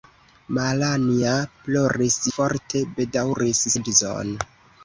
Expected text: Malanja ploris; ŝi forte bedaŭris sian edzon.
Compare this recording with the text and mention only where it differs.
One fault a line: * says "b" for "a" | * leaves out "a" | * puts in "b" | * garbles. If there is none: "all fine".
* leaves out "ŝi"
* leaves out "sian"